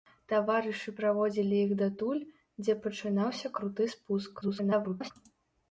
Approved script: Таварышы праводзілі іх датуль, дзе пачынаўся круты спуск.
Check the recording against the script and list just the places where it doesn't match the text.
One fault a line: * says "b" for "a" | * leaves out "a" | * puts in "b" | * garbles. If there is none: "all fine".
* garbles